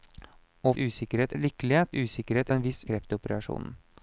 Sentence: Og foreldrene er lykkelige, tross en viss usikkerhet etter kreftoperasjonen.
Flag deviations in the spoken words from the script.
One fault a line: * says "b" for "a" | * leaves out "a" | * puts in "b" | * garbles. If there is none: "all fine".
* says "usikkerhet" for "foreldrene"
* says "usikkerhet" for "tross"
* leaves out "usikkerhet etter"